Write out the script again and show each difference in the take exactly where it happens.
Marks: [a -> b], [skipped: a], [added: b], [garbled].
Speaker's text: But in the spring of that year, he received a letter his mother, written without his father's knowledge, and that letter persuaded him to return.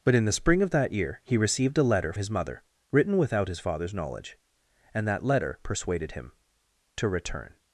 But in the spring of that year, he received a letter his mother, written without his father's knowledge, and that letter persuaded him to return.